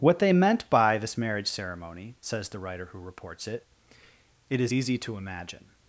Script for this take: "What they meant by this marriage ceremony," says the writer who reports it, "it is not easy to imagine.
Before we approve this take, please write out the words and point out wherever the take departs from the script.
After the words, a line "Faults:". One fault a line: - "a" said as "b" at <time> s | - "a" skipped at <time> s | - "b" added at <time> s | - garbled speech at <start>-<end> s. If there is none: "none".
"What they meant by this marriage ceremony," says the writer who reports it, "it is easy to imagine.
Faults:
- "not" skipped at 4.7 s